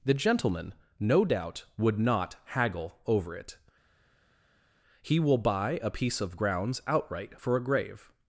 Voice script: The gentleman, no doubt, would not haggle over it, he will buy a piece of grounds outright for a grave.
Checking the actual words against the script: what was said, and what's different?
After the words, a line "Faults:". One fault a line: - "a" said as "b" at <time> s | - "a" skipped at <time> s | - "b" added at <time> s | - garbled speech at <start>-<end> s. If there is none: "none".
The gentleman, no doubt, would not haggle over it, he will buy a piece of grounds outright for a grave.
Faults:
none